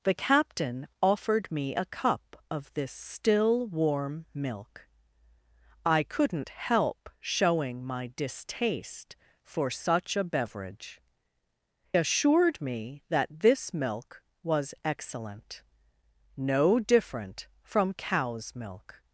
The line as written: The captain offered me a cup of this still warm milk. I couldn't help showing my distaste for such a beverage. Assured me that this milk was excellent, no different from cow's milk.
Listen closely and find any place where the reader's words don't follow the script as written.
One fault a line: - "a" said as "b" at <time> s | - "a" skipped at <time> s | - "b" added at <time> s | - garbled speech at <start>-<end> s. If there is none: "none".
none